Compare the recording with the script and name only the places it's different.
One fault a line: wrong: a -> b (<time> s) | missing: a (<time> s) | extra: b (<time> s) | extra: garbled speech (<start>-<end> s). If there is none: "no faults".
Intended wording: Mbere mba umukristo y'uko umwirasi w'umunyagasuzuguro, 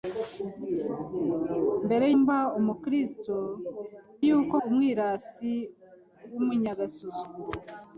no faults